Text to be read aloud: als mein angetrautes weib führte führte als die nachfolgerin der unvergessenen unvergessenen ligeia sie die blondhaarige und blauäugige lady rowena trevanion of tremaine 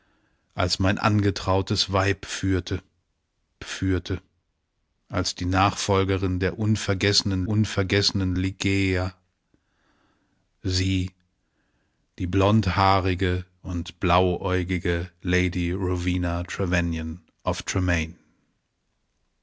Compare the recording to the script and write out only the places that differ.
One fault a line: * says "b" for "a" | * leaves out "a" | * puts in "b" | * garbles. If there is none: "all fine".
all fine